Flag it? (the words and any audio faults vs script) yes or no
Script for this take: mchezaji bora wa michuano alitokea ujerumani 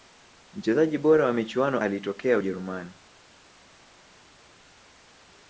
no